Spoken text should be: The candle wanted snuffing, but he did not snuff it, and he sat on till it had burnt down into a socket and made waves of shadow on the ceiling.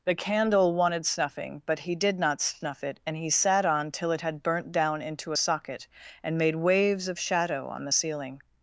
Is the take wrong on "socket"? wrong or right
right